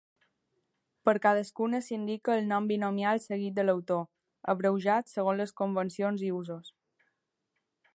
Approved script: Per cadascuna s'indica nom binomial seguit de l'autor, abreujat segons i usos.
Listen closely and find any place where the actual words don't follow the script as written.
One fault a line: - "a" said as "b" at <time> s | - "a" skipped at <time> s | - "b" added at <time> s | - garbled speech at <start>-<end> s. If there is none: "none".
- "el" added at 2.4 s
- "les convencions" added at 5.5 s